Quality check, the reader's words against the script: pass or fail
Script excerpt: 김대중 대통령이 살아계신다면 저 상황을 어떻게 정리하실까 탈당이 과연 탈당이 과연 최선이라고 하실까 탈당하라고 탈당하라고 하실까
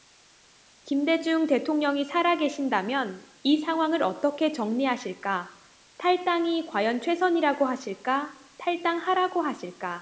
fail